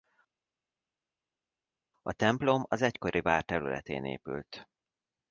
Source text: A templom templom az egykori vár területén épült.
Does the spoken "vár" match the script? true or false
true